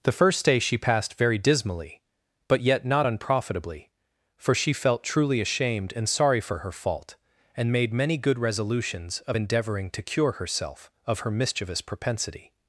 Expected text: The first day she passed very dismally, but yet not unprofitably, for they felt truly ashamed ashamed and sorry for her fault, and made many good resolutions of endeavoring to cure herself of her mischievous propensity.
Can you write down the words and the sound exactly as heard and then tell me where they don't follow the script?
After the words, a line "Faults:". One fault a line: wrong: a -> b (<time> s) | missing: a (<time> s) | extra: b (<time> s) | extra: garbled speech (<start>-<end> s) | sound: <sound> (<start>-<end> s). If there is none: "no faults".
The first day she passed very dismally, but yet not unprofitably, for she felt truly ashamed and sorry for her fault, and made many good resolutions of endeavoring to cure herself of her mischievous propensity.
Faults:
wrong: they -> she (4.5 s)
missing: ashamed (5.9 s)